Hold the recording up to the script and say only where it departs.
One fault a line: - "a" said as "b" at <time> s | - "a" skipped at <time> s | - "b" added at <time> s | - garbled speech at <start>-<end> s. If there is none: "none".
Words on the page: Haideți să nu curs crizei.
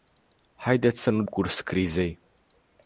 none